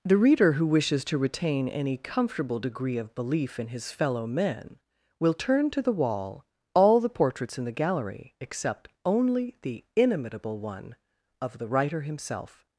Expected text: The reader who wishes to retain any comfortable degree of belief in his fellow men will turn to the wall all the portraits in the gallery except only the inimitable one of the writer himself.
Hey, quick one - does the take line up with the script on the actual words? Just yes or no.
yes